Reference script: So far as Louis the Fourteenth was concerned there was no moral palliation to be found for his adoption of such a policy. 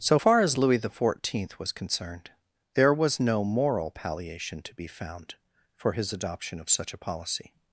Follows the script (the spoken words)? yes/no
yes